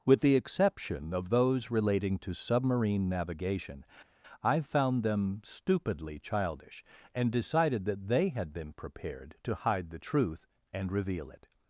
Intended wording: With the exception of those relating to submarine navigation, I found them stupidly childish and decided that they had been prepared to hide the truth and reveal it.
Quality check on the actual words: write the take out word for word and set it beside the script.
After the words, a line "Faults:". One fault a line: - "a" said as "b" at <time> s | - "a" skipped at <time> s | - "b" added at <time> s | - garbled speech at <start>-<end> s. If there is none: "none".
With the exception of those relating to submarine navigation, I found them stupidly childish and decided that they had been prepared to hide the truth and reveal it.
Faults:
none